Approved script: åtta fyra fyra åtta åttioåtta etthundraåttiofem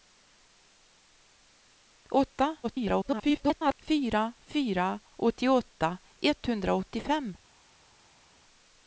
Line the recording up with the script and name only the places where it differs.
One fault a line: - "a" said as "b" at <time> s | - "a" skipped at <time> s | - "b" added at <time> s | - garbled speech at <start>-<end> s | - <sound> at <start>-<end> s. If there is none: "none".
- garbled speech at 2.6-3.7 s
- "åtta" skipped at 5.0 s